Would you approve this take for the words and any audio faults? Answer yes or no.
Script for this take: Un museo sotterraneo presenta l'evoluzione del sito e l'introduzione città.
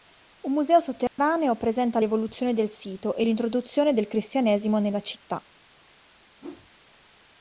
no